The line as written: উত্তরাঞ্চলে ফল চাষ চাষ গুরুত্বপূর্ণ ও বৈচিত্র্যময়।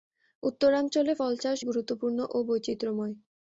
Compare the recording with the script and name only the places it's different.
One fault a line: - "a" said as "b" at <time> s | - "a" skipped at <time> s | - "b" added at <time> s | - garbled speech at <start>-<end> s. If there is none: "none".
- "চাষ" skipped at 1.6 s